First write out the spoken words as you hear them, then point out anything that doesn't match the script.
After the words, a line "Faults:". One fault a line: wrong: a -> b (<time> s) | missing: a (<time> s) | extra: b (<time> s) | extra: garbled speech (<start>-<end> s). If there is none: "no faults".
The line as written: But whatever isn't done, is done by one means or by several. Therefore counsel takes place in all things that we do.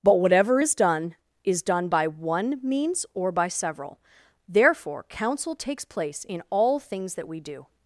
But whatever is done, is done by one means or by several. Therefore counsel takes place in all things that we do.
Faults:
wrong: isn't -> is (0.6 s)